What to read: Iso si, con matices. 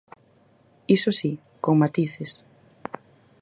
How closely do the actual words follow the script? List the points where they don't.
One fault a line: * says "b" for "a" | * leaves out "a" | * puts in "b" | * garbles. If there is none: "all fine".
all fine